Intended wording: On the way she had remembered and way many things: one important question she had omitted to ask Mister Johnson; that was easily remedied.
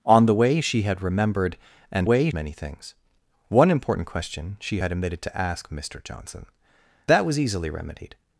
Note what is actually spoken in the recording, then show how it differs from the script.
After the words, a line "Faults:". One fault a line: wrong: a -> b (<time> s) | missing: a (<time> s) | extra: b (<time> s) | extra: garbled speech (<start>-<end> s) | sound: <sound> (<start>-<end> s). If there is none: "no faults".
On the way she had remembered and way many things: one important question she had omitted to ask Mister Johnson; that was easily remedied.
Faults:
no faults